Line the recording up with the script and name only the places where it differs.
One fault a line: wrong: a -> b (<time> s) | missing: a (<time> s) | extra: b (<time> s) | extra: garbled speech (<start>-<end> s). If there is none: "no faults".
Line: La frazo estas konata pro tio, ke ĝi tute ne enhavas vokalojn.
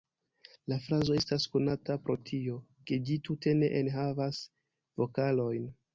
no faults